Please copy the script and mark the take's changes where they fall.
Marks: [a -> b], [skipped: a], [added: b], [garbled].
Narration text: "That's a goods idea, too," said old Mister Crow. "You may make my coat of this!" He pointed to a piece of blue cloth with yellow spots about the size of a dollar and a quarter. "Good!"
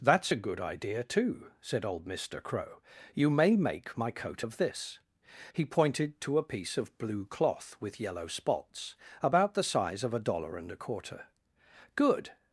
"That's a [goods -> good] idea, too," said old Mister Crow. "You may make my coat of this!" He pointed to a piece of blue cloth with yellow spots about the size of a dollar and a quarter. "Good!"